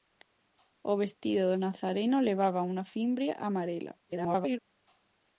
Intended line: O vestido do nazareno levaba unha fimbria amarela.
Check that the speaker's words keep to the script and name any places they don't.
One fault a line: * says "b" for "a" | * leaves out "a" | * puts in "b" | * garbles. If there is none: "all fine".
* garbles